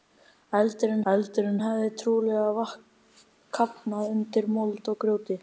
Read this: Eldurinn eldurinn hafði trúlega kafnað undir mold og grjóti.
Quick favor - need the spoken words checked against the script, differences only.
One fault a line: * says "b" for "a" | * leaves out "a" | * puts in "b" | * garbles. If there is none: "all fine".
all fine